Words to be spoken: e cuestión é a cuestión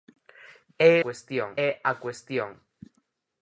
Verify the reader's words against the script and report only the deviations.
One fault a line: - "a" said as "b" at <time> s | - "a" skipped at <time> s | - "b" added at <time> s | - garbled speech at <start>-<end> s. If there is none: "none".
none